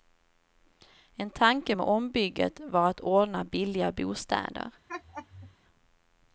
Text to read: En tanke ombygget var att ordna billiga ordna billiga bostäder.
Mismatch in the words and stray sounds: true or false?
true